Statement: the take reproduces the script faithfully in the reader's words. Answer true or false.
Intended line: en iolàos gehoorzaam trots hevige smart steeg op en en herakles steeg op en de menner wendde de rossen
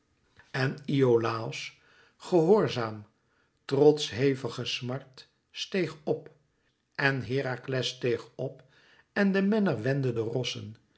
false